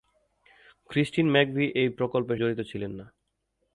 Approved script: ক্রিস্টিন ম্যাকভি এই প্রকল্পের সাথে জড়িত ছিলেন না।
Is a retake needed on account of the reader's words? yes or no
yes